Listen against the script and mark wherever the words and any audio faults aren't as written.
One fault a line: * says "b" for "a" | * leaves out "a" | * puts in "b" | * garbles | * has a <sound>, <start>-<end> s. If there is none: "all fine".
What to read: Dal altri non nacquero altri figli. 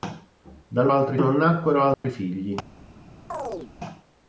* has a dropout, 1.9-2.0 s
* has a chirp, 3.3-3.7 s